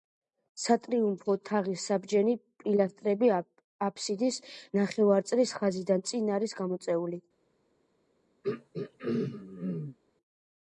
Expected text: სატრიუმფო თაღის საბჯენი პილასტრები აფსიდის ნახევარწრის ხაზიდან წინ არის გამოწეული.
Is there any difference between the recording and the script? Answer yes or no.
no